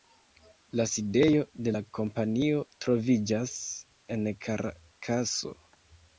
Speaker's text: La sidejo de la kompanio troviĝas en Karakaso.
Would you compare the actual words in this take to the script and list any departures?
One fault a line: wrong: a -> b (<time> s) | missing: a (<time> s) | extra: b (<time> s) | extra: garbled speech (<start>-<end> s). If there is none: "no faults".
no faults